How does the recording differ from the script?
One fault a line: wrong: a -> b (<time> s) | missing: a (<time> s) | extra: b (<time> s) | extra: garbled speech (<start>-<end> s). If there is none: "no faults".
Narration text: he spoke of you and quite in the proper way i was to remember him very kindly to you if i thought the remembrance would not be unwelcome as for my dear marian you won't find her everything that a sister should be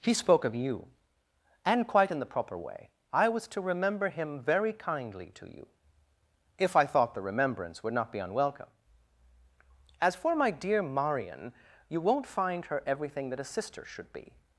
no faults